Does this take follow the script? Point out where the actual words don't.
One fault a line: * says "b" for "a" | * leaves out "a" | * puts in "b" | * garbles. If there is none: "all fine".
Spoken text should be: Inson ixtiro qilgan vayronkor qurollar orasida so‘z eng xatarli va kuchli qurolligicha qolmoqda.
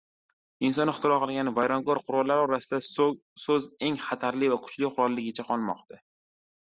all fine